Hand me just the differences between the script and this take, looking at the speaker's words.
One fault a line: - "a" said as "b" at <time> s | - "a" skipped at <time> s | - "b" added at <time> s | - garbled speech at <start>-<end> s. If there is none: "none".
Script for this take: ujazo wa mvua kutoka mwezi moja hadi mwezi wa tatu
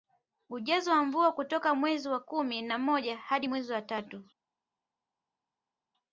- "wa kumi na" added at 2.1 s